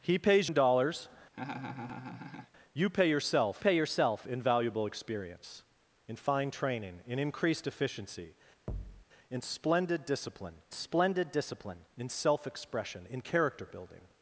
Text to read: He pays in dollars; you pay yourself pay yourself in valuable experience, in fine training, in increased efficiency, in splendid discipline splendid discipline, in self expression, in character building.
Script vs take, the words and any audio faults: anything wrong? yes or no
yes